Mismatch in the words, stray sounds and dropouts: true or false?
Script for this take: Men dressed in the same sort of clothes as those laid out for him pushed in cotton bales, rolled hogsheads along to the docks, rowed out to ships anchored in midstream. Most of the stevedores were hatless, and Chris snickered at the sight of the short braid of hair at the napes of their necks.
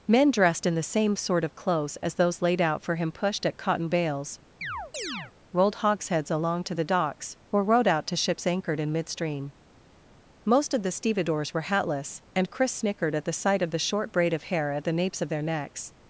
true